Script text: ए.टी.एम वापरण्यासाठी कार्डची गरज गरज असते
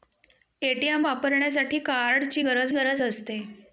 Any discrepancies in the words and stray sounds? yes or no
no